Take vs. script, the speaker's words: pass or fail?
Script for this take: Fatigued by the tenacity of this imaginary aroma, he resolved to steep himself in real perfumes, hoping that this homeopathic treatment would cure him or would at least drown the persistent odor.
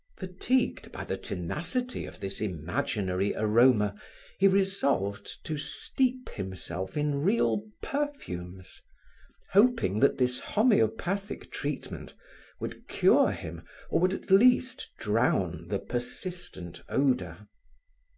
pass